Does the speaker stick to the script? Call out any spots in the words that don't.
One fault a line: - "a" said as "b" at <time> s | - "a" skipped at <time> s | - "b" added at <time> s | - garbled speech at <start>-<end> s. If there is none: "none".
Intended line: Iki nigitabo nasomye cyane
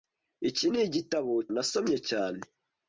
none